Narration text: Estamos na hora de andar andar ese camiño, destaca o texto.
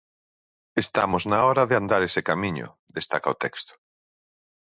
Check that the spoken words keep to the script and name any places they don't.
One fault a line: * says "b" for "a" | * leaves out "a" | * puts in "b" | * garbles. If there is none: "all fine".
* leaves out "andar"